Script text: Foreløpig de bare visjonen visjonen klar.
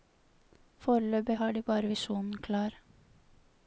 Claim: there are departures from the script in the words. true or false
true